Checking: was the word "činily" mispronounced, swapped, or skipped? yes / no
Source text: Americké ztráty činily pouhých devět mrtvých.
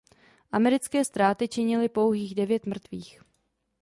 no